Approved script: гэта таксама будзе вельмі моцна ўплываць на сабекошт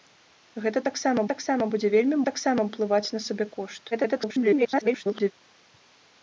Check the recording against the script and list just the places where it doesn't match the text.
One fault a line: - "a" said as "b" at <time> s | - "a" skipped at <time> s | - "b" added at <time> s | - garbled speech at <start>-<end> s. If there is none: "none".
- "таксама" added at 1.3 s
- "моцна" said as "таксама" at 2.3 s
- garbled speech at 3.9-5.3 s